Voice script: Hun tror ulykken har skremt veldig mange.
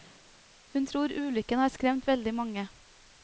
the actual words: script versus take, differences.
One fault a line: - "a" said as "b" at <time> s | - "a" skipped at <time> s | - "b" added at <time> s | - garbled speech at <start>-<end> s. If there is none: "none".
none